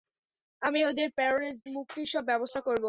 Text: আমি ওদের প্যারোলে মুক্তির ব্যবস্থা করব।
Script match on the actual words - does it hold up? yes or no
no